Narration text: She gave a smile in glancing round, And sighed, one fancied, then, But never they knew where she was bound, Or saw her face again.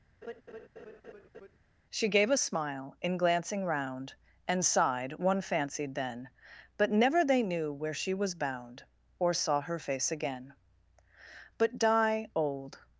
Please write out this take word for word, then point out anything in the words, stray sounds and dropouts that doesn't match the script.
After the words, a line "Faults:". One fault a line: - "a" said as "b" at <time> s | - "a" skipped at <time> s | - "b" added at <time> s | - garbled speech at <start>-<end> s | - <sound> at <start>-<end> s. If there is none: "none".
She gave a smile in glancing round, And sighed, one fancied, then, But never they knew where she was bound, Or saw her face again. But die old
Faults:
- laugh at 0.2-1.6 s
- "But die old" added at 11.6 s